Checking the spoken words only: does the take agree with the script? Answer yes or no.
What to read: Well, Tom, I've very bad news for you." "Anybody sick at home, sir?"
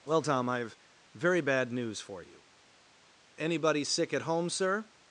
yes